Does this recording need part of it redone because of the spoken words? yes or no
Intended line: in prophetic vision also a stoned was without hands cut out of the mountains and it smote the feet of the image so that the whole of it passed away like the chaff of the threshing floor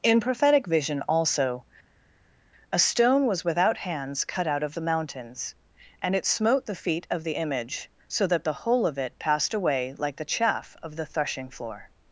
yes